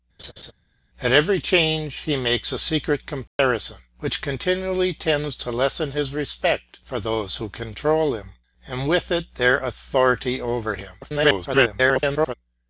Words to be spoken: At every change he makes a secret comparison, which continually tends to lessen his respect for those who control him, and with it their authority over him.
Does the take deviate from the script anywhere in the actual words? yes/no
yes